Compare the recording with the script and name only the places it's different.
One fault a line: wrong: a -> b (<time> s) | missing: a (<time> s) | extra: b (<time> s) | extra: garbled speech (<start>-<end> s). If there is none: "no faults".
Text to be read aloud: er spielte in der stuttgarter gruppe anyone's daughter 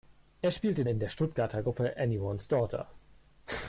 no faults